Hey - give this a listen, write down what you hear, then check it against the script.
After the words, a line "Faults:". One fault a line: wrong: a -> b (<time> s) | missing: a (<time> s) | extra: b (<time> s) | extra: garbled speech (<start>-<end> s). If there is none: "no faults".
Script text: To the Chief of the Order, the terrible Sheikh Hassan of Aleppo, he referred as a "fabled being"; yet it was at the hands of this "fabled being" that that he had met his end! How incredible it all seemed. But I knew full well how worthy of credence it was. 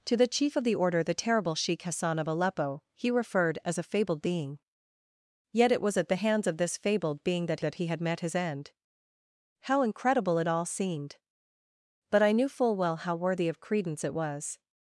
To the Chief of the Order, the terrible Sheikh Hassan of Aleppo, he referred as a "fabled being"; yet it was at the hands of this "fabled being" that that he had met his end! How incredible it all seemed. But I knew full well how worthy of credence it was.
Faults:
no faults